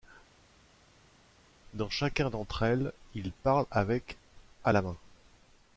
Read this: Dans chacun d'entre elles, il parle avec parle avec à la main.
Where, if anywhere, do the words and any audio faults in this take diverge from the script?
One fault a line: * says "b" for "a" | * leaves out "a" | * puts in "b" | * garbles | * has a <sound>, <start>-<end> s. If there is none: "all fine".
* leaves out "parle avec"